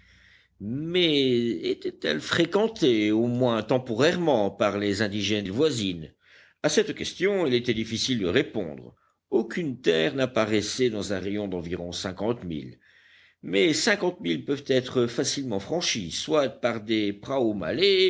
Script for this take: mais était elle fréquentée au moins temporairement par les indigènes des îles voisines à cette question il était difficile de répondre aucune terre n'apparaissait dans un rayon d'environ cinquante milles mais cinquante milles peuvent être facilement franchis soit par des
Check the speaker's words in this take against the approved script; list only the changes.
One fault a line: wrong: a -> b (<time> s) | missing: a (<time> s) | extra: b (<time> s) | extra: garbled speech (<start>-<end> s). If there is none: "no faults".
missing: des (5.5 s)